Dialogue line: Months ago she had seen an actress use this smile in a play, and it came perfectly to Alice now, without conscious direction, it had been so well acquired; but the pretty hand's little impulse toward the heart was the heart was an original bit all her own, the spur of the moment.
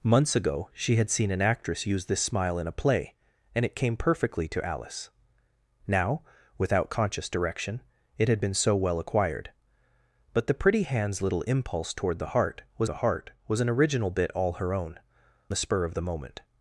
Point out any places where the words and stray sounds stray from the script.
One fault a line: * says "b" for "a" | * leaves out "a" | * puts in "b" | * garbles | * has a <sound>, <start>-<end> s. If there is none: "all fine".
all fine